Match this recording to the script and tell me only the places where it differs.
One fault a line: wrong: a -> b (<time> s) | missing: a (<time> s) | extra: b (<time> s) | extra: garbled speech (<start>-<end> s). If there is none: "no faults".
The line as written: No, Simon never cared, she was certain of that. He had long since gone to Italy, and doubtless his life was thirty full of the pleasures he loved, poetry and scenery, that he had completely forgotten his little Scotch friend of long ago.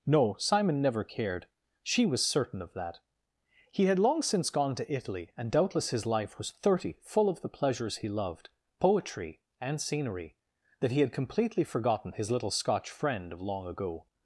no faults